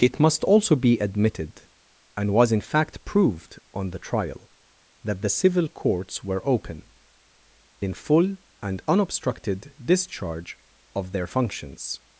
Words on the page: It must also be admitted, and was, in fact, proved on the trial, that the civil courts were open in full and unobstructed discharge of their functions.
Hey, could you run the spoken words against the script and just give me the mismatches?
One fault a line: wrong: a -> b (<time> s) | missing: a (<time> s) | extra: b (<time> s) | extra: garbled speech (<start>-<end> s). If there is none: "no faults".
no faults